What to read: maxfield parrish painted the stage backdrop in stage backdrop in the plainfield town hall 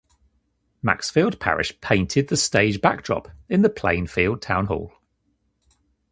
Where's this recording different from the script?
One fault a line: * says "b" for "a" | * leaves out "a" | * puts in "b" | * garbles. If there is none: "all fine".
* leaves out "stage backdrop in"